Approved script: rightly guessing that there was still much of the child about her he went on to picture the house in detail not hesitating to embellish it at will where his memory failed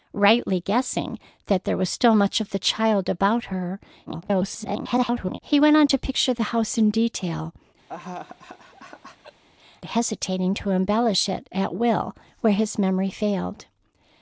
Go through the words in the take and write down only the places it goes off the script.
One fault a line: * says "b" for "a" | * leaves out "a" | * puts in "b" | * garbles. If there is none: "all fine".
* garbles
* leaves out "not"